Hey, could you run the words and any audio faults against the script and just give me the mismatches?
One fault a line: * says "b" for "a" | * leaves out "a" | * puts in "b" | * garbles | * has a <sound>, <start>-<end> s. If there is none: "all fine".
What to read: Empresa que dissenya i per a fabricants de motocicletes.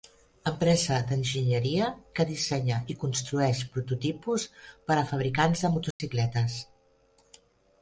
* puts in "d'enginyeria"
* puts in "construeix prototipus"
* has a dropout, 5.9-6.0 s